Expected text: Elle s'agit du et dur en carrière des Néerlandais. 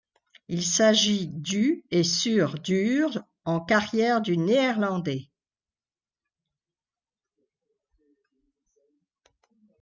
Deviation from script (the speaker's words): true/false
true